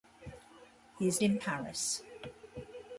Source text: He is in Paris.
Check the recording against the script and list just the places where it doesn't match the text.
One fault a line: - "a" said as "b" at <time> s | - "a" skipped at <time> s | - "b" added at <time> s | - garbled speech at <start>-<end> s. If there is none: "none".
none